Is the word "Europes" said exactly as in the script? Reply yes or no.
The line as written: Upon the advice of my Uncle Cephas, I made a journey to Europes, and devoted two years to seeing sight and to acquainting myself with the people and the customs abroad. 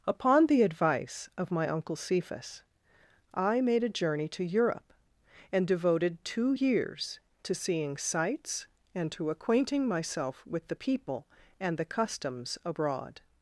no